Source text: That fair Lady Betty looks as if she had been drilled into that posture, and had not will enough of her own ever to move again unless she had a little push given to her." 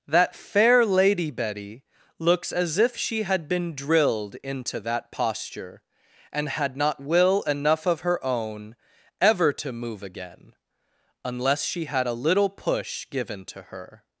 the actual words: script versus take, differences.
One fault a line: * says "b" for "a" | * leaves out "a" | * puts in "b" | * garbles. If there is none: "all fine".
all fine